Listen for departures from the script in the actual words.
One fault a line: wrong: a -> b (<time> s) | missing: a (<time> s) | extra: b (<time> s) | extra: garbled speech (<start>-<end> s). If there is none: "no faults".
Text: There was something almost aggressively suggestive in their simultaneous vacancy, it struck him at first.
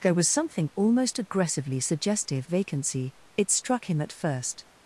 missing: in their simultaneous (2.5 s)